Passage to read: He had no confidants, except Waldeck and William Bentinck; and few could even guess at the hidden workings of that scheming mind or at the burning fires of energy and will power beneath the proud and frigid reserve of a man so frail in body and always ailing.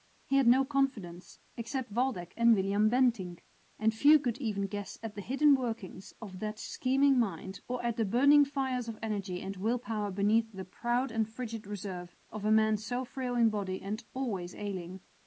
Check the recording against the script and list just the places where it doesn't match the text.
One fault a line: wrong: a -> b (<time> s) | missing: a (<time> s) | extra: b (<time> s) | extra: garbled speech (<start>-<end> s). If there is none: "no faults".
no faults